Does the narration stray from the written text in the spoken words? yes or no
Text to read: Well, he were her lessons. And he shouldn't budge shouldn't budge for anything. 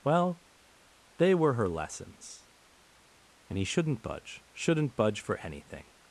yes